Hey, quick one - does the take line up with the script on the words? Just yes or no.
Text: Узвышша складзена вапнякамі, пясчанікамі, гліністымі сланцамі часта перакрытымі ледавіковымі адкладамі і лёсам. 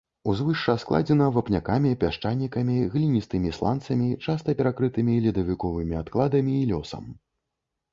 yes